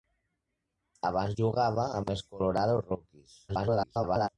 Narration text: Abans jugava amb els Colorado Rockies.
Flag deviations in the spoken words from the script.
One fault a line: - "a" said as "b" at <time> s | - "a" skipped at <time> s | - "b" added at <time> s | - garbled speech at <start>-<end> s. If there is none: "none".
- garbled speech at 3.5-4.3 s